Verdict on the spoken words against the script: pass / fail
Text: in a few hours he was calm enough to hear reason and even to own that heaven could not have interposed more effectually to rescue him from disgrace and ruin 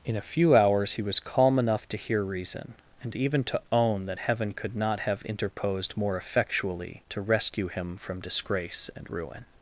pass